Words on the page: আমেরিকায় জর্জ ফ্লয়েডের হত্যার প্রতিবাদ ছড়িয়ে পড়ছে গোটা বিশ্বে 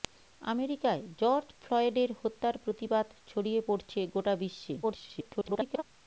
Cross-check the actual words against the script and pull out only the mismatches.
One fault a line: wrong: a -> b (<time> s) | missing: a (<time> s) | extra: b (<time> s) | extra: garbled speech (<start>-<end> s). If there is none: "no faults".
extra: garbled speech (4.8-5.8 s)